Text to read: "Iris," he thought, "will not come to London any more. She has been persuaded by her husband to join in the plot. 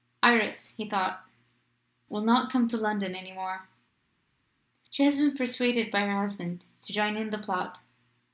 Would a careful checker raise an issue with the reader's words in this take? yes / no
no